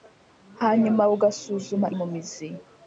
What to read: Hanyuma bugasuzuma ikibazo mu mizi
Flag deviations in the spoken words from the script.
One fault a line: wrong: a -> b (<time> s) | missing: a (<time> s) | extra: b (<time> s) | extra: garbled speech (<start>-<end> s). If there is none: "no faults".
missing: ikibazo (1.9 s)